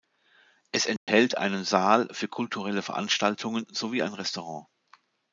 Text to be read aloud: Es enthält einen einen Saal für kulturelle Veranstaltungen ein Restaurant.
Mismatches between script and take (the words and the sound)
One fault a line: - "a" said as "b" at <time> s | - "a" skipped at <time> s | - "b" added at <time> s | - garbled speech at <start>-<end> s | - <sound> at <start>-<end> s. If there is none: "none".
- dropout at 1.0-1.1 s
- "einen" skipped at 1.6 s
- "sowie" added at 3.7 s